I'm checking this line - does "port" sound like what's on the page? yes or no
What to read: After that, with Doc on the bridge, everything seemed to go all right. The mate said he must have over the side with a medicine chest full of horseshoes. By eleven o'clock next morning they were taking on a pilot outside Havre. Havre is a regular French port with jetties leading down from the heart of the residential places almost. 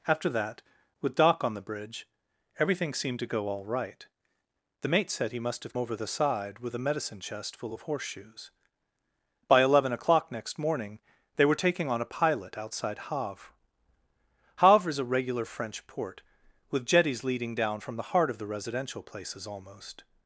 yes